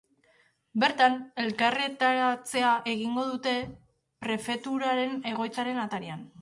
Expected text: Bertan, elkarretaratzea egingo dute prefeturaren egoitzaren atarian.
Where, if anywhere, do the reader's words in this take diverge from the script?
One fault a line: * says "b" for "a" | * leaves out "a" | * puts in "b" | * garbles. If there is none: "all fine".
all fine